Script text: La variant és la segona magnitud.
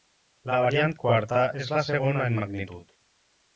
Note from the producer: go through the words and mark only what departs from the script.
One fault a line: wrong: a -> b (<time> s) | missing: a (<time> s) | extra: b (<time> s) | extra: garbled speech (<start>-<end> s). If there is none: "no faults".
extra: quarta (1.0 s)
extra: en (2.3 s)